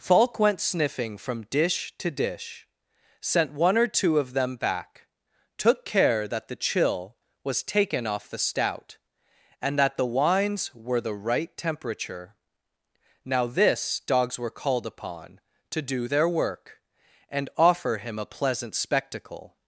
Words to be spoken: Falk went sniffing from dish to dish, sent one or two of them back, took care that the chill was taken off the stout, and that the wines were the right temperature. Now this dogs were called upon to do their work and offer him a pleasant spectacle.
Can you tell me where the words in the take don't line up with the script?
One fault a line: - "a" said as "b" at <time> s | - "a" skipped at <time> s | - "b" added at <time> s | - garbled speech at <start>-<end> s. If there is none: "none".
none